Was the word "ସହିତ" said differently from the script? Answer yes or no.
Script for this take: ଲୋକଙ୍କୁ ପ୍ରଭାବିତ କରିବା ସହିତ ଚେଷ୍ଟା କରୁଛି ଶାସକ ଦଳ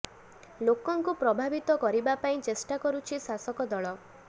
yes